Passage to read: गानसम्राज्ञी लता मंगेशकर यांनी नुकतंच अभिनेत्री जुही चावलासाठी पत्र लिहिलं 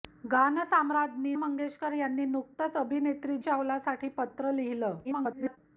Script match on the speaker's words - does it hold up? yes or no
no